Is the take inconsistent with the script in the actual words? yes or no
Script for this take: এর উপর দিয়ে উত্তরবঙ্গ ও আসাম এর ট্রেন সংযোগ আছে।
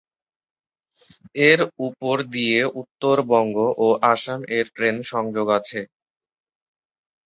no